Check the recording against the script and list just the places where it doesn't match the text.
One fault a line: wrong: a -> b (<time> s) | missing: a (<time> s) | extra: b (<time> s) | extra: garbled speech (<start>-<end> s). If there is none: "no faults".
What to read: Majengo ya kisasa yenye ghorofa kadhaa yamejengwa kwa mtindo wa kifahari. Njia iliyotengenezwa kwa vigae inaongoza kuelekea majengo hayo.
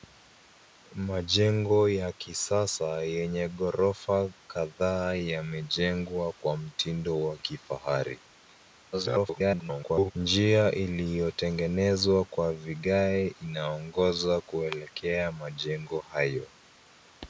extra: garbled speech (8.9-10.1 s)